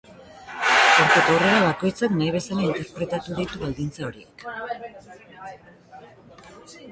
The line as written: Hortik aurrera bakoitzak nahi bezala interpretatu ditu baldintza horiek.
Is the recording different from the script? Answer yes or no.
no